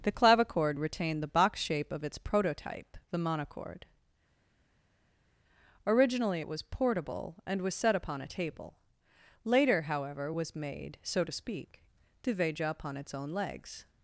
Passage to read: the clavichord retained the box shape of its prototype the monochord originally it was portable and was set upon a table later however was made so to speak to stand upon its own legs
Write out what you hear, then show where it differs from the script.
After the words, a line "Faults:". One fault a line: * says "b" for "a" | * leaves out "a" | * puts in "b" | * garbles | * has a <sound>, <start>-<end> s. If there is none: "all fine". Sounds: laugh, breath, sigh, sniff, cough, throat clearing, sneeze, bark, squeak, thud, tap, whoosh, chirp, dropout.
the clavichord retained the box shape of its prototype the monochord originally it was portable and was set upon a table later however was made so to speak to veja upon its own legs
Faults:
* says "veja" for "stand"